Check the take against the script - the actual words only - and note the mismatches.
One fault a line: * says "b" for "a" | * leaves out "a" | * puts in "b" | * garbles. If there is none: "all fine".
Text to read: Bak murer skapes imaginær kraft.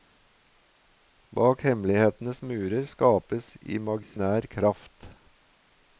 * puts in "hemmelighetenes"